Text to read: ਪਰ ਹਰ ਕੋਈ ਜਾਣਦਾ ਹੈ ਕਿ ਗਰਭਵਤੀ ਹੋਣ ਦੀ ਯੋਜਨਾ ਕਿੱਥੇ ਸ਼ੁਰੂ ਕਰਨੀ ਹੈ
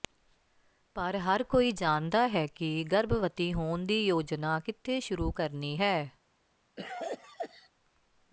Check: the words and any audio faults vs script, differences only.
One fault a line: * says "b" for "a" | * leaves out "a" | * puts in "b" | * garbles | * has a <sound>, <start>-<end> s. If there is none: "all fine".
* has a cough, 6.8-7.7 s